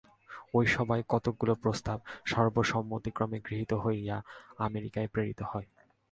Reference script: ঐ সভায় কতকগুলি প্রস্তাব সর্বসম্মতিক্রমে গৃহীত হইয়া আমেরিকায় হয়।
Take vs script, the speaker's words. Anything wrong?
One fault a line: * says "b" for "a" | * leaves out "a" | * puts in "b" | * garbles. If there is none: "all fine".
* puts in "প্রেরিত"